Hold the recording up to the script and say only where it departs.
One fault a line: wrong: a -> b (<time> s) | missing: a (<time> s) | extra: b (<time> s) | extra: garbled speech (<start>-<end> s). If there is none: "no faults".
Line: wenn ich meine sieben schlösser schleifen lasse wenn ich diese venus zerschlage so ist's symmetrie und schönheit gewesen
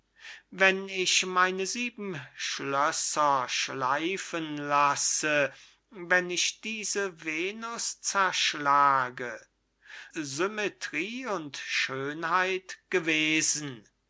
missing: so ist's (9.4 s)